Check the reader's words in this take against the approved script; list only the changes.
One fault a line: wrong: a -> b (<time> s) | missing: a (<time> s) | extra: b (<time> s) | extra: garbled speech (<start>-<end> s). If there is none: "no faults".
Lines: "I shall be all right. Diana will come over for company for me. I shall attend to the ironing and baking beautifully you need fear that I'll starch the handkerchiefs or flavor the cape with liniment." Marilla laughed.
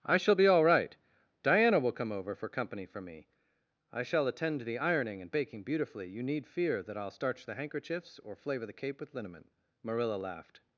no faults